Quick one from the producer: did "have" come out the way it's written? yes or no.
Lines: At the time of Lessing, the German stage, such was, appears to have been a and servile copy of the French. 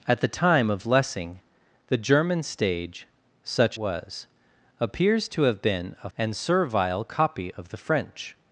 yes